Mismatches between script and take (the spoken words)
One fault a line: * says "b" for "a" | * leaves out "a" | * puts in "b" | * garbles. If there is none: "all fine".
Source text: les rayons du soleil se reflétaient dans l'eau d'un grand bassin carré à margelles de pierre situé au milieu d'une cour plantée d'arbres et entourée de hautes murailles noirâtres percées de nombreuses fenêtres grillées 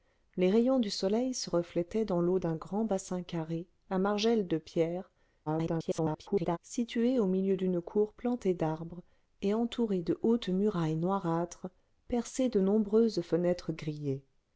* garbles